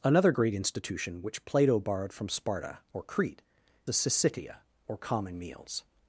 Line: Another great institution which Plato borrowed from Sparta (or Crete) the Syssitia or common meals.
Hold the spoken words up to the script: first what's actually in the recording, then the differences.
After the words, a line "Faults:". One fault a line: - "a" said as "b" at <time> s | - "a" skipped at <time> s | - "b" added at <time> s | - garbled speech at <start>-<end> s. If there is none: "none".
Another great institution which Plato borrowed from Sparta (or Crete) the Syssitia or common meals.
Faults:
none